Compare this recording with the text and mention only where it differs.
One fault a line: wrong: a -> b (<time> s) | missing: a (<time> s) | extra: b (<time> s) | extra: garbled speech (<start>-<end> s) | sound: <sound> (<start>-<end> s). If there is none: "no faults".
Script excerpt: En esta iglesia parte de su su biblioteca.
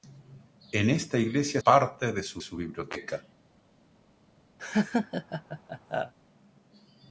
sound: laugh (4.6-6.1 s)